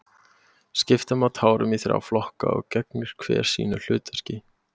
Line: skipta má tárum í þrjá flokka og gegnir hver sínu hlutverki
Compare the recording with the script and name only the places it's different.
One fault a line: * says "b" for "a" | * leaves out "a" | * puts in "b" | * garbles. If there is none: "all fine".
all fine